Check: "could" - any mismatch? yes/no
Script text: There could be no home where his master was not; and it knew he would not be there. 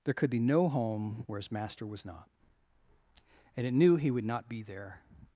no